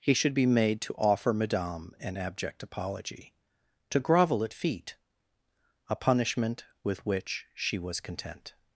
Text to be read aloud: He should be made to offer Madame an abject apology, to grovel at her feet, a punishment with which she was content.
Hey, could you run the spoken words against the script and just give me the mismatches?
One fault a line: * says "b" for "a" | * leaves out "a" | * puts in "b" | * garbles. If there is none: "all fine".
* leaves out "her"